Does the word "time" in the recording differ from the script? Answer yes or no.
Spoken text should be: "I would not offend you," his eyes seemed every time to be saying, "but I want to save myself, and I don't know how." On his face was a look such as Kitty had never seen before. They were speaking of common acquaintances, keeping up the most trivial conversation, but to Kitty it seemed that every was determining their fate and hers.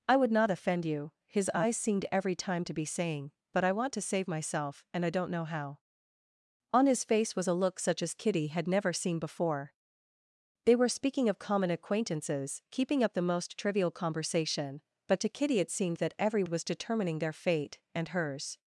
no